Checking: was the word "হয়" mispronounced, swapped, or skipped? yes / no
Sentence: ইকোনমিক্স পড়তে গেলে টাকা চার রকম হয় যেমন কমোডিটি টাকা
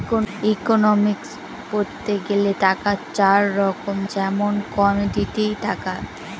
yes